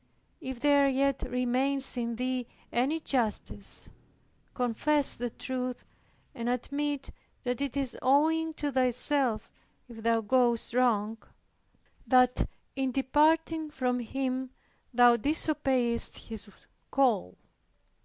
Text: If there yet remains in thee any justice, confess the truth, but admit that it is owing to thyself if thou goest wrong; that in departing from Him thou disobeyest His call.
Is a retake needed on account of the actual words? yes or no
yes